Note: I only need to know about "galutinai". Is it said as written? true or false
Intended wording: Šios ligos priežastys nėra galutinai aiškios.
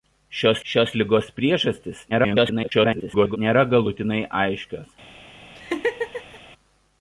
true